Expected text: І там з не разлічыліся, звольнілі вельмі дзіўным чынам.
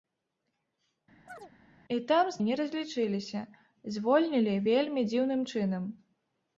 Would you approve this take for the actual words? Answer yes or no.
yes